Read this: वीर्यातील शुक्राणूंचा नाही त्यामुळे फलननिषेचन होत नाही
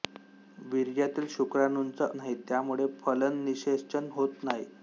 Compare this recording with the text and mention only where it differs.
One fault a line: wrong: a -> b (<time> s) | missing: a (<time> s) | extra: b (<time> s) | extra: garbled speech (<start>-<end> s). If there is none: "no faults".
no faults